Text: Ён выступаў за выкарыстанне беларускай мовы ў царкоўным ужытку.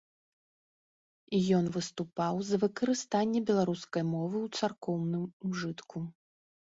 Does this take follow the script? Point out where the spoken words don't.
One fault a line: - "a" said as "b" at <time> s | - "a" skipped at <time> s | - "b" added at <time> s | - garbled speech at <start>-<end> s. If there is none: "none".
none